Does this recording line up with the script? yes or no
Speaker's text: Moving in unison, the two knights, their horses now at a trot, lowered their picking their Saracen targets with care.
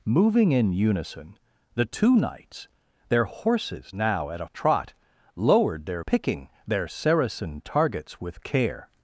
yes